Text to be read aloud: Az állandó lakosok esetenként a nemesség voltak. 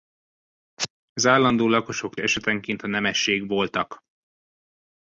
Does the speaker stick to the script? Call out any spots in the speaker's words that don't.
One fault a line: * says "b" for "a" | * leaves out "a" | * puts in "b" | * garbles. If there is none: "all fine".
all fine